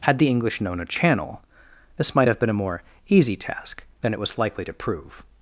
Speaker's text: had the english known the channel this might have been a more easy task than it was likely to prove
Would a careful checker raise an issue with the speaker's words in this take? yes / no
yes